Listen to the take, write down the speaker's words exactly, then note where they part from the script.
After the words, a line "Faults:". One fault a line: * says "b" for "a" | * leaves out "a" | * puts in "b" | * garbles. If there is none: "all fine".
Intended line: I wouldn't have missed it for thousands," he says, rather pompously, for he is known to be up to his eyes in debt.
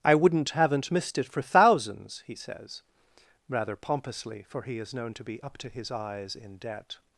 I wouldn't haven't missed it for thousands," he says, rather pompously, for he is known to be up to his eyes in debt.
Faults:
* says "haven't" for "have"